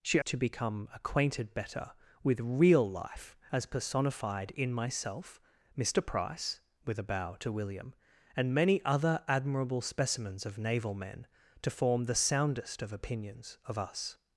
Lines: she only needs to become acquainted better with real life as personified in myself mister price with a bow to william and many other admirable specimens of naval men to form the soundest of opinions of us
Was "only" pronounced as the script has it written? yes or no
no